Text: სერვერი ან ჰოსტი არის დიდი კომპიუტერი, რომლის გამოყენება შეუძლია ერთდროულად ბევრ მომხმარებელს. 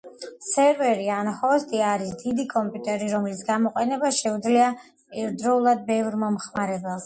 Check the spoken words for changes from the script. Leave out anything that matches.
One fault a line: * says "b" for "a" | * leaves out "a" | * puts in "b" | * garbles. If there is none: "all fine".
all fine